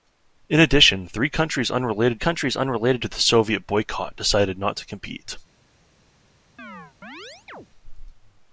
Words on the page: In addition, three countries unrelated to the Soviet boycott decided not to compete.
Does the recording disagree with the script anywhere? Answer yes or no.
yes